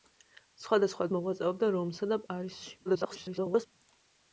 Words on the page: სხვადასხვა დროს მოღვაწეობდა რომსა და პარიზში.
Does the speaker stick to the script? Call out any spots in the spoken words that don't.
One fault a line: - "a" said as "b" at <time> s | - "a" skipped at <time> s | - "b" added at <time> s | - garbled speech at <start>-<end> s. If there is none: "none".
- "დროს" skipped at 1.1 s
- garbled speech at 2.9-3.7 s